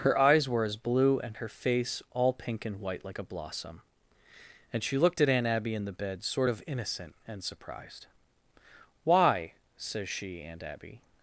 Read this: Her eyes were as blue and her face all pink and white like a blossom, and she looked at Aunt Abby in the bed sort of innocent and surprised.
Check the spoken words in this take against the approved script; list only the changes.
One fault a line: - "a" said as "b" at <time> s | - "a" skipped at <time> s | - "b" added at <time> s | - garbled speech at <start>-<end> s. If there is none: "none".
- "Why says she Aunt Abby" added at 9.0 s